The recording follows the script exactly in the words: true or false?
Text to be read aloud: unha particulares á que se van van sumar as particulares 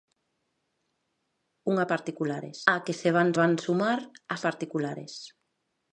true